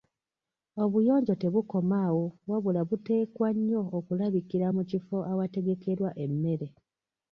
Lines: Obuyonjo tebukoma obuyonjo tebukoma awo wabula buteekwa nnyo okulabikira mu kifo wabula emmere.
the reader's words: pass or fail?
fail